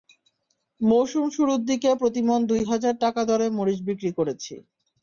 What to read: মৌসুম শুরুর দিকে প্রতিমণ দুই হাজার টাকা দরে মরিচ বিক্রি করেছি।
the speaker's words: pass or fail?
pass